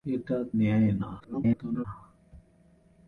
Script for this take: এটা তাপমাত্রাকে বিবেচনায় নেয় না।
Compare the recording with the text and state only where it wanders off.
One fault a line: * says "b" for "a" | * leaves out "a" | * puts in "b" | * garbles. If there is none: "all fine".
* leaves out "তাপমাত্রাকে বিবেচনায়"
* garbles